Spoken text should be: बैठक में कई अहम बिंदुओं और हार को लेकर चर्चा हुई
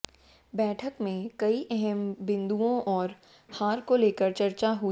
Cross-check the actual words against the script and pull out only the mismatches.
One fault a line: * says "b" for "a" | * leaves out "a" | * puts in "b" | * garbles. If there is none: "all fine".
all fine